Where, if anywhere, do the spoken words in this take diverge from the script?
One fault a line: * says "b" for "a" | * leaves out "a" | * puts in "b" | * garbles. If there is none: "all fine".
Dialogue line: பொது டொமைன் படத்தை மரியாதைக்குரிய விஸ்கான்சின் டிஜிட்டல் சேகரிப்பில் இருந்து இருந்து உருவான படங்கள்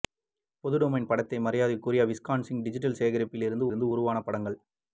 all fine